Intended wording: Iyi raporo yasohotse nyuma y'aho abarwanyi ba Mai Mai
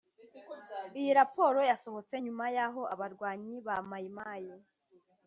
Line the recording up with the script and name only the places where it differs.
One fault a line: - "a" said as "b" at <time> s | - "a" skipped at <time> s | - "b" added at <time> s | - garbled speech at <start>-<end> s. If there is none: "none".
none